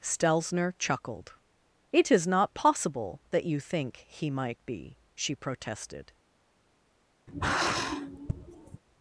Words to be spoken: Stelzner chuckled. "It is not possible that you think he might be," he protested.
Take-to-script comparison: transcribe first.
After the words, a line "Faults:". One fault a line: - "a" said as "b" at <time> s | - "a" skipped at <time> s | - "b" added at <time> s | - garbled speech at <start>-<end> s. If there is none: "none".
Stelzner chuckled. "It is not possible that you think he might be," she protested.
Faults:
- "he" said as "she" at 5.1 s